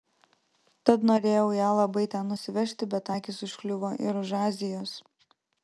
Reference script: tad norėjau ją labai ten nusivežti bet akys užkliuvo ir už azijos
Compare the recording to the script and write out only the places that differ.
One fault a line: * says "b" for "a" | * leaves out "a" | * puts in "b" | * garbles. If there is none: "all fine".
all fine